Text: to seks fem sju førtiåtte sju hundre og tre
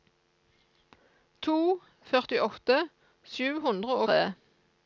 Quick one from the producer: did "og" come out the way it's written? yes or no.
no